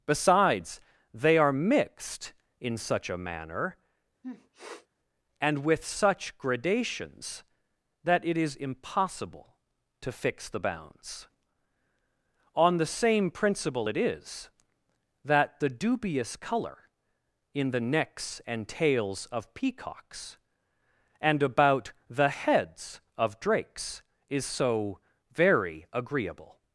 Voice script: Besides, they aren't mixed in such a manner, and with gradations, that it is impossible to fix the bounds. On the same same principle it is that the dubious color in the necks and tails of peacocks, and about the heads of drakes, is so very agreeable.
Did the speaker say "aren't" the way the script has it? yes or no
no